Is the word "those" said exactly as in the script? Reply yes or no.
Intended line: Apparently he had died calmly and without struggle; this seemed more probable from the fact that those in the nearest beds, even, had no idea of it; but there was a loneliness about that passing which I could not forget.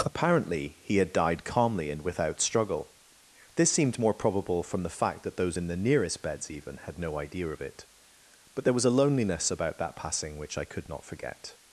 yes